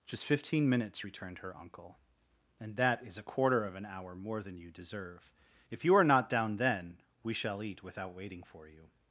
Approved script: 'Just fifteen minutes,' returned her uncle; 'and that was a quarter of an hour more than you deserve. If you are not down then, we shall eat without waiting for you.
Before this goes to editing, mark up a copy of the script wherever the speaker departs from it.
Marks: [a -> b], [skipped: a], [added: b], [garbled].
'Just fifteen minutes,' returned her uncle; 'and that [was -> is] a quarter of an hour more than you deserve. If you are not down then, we shall eat without waiting for you.